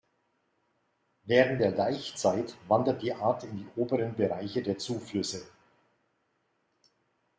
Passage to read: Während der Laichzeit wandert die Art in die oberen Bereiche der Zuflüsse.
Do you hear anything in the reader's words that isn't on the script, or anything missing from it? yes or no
no